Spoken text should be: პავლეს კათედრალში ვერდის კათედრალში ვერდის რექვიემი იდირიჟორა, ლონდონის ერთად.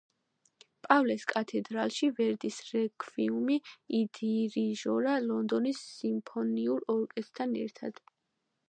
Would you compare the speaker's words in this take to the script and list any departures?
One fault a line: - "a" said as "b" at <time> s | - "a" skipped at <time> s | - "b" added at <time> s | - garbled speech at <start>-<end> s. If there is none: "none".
- "კათედრალში ვერდის" skipped at 2.6 s
- "სიმფონიურ ორკესტრთან" added at 6.0 s